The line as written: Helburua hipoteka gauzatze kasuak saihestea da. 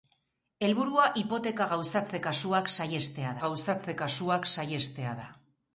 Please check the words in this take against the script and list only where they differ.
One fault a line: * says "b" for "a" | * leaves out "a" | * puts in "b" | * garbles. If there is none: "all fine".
* puts in "gauzatze kasuak saihestea"